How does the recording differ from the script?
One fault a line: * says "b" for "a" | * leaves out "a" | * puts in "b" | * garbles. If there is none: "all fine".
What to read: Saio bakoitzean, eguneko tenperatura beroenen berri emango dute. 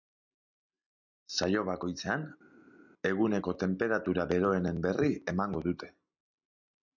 all fine